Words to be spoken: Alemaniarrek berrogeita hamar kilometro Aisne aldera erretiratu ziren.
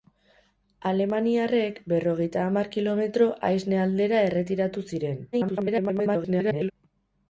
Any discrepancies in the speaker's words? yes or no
yes